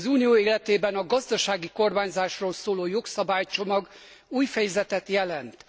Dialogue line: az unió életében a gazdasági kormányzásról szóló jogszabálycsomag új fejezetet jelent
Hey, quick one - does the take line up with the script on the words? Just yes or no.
yes